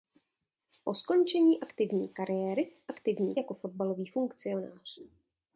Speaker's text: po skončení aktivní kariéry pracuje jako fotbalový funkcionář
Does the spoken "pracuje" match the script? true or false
false